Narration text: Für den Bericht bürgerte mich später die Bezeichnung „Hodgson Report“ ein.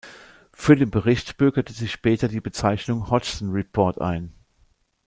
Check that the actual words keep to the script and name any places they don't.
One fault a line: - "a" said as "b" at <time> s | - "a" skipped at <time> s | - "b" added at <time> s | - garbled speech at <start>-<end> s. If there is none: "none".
- "mich" said as "sich" at 1.7 s